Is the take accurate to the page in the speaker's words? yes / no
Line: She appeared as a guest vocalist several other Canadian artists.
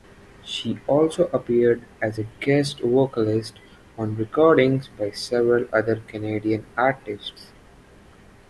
no